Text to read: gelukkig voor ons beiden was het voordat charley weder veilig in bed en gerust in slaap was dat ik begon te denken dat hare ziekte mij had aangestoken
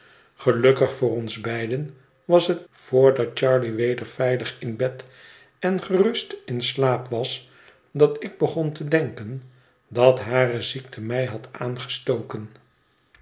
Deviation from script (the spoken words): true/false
false